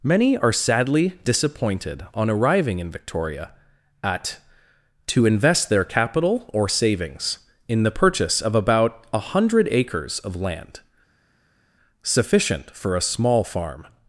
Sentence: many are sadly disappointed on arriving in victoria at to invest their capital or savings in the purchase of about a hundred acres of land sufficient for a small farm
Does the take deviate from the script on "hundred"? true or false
false